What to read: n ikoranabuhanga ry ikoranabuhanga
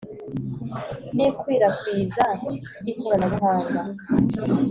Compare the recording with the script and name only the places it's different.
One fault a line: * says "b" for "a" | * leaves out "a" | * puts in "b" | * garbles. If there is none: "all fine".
* says "ikwirakwiza" for "ikoranabuhanga"